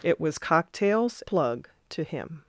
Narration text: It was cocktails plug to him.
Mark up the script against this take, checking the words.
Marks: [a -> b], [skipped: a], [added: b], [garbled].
It was cocktails plug to him.